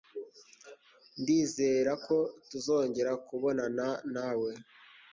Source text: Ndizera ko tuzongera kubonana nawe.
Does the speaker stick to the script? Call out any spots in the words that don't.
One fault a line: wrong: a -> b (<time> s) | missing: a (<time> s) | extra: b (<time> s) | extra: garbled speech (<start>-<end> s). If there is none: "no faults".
no faults